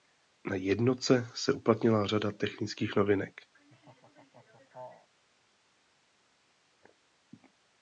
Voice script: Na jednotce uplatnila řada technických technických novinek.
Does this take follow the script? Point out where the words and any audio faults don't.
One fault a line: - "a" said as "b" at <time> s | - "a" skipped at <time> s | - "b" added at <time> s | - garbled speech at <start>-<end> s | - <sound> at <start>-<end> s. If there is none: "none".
- "se" added at 1.4 s
- "technických" skipped at 2.9 s
- laugh at 3.5-5.1 s